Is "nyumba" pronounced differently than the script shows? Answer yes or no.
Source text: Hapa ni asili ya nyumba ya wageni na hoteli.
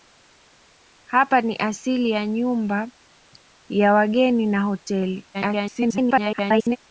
no